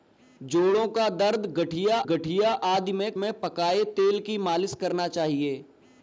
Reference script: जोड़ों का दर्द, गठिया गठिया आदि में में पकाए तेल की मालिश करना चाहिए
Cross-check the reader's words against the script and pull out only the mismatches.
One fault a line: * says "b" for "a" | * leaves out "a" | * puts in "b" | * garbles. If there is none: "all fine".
all fine